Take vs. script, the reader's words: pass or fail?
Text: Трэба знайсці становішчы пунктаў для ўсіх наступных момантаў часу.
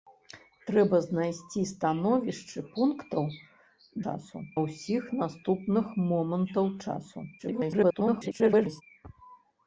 fail